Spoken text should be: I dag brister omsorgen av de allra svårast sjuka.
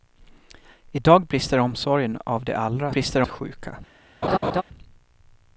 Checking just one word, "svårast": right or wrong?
wrong